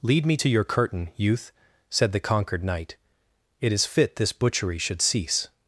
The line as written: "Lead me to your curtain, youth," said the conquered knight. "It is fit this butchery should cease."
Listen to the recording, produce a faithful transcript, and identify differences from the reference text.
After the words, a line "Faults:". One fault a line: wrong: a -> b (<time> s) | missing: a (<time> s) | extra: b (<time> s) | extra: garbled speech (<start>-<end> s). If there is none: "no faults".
"Lead me to your curtain, youth," said the conquered knight. "It is fit this butchery should cease."
Faults:
no faults